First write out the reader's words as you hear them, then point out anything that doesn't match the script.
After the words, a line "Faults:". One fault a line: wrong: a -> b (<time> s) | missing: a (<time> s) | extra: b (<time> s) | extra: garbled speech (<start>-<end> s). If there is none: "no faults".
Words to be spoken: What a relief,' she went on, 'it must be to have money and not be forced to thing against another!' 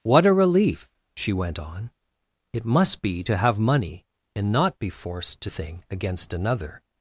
What a relief,' she went on, 'it must be to have money and not be forced to thing against another!'
Faults:
no faults